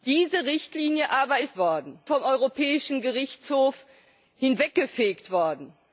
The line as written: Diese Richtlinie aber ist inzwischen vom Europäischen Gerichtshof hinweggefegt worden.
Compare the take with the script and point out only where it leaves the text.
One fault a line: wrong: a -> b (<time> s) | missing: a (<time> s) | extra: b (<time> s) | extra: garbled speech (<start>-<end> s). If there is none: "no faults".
wrong: inzwischen -> worden (1.6 s)